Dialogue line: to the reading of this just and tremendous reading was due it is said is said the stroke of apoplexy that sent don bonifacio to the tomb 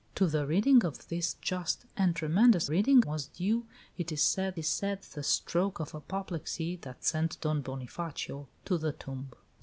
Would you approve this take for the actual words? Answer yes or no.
yes